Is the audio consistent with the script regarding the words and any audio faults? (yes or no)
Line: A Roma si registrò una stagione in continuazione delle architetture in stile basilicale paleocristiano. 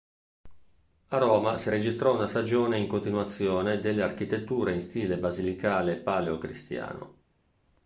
yes